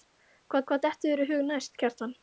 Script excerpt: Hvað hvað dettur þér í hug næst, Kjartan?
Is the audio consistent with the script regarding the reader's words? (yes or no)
yes